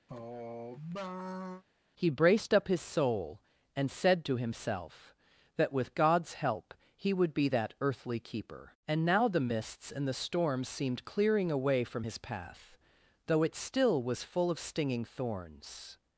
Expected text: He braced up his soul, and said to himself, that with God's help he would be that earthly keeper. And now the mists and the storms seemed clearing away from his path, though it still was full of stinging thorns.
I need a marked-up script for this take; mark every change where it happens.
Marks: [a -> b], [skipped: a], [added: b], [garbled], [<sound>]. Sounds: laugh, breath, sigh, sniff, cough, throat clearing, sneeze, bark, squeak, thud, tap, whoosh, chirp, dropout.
[sigh] He braced up his soul, and said to himself, that with God's help he would be that earthly keeper. And now the mists and the storms seemed clearing away from his path, though it still was full of stinging thorns.